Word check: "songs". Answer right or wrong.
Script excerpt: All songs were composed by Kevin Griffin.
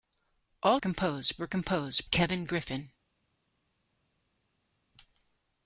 wrong